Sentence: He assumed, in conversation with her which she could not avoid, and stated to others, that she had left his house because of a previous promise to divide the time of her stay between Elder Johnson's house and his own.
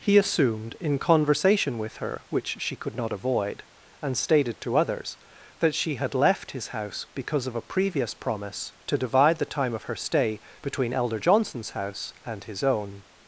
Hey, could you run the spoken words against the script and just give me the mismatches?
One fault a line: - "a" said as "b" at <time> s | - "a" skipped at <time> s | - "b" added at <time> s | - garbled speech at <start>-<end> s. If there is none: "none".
none